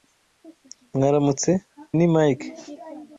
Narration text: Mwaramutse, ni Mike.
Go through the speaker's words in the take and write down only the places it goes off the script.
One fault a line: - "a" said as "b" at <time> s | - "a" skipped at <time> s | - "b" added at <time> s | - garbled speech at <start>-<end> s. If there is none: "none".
none